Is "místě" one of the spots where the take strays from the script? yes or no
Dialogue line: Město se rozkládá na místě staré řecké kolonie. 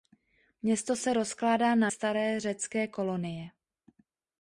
yes